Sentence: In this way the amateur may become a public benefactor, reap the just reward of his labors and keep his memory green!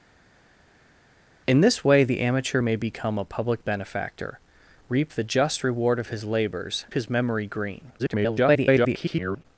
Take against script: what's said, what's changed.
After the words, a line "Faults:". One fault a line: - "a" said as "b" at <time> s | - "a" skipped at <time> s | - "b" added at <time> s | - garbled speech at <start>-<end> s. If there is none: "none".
In this way the amateur may become a public benefactor, reap the just reward of his labors his memory green! [garbled]
Faults:
- "and keep" skipped at 6.8 s
- garbled speech at 8.0-9.5 s